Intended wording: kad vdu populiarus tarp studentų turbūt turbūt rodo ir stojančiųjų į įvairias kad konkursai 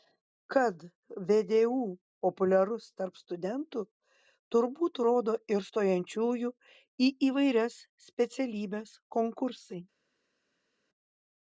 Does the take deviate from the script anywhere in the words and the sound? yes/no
yes